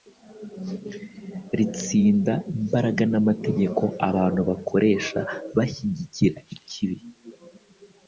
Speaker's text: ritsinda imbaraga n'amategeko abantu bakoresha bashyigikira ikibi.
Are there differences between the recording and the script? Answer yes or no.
no